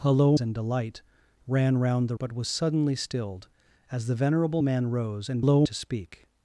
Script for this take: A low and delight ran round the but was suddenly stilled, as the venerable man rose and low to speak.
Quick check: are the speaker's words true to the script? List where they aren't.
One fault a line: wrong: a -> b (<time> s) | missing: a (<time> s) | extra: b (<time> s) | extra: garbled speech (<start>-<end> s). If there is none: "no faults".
no faults